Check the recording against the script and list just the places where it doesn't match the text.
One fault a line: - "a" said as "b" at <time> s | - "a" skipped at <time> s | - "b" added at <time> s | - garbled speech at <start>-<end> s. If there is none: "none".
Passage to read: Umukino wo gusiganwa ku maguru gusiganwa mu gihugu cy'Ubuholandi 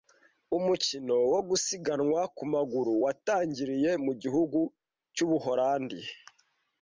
- "gusiganwa" said as "watangiriye" at 3.0 s